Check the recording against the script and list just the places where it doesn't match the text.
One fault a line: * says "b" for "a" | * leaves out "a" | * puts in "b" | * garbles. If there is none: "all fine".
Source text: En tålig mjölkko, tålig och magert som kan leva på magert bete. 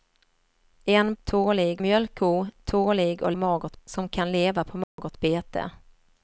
all fine